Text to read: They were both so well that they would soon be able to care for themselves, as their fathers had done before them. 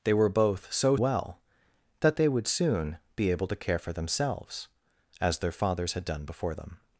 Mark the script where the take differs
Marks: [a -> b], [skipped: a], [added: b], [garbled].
They were both so well that they would soon be able to care for themselves, as their fathers had done before them.